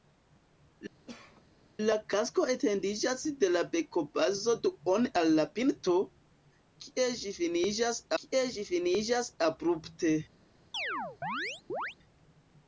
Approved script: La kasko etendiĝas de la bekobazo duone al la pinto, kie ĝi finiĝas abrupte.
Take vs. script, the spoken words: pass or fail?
fail